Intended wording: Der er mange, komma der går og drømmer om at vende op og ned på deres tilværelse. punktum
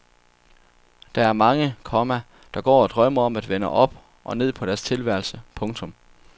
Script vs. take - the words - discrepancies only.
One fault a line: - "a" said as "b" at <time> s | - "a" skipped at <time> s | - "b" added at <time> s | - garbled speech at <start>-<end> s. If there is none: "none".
none